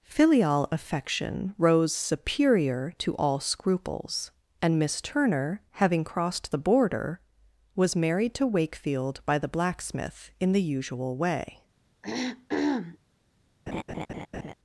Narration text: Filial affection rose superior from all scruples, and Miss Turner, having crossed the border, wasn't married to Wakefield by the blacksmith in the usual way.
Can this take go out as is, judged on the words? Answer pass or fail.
fail